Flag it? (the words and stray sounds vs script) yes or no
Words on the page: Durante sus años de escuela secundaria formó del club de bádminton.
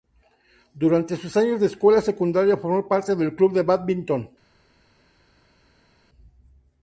yes